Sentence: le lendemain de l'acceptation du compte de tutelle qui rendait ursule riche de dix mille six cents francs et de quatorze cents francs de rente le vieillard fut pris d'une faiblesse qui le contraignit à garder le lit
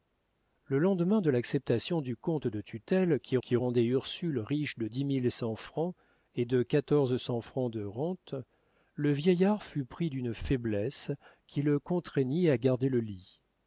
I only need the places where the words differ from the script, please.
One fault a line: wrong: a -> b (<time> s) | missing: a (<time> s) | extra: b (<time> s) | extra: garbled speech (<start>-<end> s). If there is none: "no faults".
extra: qui (3.4 s)
missing: six (5.3 s)